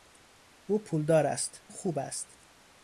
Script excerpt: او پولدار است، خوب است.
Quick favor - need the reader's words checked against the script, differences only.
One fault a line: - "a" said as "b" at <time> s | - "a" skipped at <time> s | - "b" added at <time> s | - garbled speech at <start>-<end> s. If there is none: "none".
none